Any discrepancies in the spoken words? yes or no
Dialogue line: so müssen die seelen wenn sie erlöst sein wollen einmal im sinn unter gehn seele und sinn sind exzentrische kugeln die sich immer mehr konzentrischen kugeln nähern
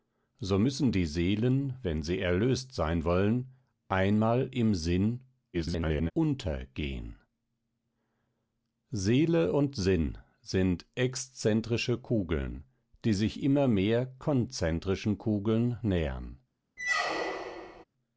yes